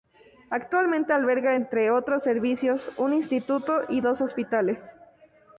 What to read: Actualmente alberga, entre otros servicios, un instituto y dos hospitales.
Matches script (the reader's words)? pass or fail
pass